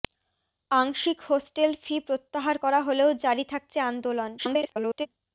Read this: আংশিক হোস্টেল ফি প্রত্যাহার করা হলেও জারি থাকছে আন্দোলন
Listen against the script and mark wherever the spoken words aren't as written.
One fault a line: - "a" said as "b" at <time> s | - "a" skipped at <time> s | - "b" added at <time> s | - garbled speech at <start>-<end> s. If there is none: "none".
- garbled speech at 4.4-5.1 s